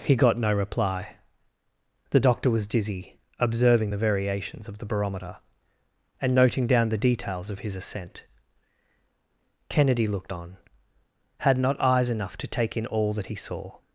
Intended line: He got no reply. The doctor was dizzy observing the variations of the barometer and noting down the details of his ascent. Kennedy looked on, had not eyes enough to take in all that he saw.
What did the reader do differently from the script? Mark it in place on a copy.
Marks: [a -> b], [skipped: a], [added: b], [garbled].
He got no reply. The doctor was dizzy observing the variations of the barometer and noting down the details of his ascent. Kennedy looked on, had not eyes enough to take in all that he saw.